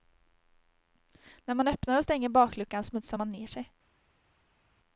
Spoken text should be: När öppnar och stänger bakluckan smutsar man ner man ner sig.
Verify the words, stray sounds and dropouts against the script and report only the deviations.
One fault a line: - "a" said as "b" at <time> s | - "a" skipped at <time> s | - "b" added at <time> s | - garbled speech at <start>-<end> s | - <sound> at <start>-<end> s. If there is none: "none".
- "man" added at 1.6 s
- "man ner" skipped at 3.5 s